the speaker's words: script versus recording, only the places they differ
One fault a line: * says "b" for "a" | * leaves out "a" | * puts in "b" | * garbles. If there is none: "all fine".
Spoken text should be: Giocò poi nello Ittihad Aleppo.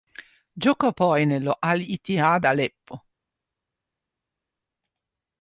* puts in "Al"